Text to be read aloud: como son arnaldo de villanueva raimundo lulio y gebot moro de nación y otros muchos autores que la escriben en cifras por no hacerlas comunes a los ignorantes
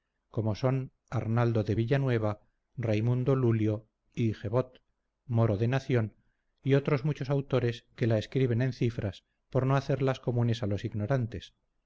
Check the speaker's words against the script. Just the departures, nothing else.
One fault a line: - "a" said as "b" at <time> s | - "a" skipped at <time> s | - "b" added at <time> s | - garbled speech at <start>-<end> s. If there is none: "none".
none